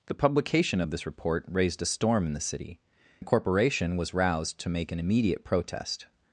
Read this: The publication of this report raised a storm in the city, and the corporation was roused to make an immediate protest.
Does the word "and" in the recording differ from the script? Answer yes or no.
yes